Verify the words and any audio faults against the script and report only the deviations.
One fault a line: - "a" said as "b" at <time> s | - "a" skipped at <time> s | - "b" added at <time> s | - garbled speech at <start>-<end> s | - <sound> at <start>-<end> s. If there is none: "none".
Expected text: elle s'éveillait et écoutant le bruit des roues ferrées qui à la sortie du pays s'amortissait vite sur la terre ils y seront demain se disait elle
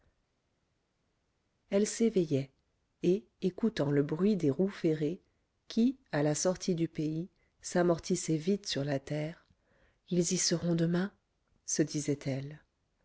none